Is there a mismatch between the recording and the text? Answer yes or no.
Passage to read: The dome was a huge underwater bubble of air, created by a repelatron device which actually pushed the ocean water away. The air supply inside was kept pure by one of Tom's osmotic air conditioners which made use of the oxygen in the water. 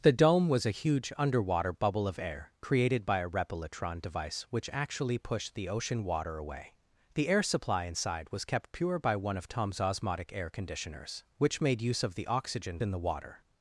no